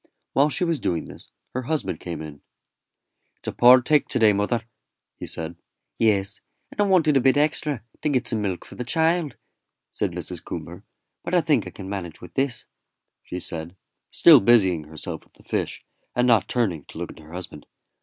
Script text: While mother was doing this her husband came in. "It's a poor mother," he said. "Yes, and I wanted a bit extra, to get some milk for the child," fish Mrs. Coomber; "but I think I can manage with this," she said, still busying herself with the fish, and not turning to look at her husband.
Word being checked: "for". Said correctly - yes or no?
yes